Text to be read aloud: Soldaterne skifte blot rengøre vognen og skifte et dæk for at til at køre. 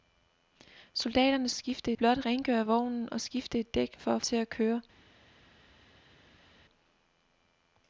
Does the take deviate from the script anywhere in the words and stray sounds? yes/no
no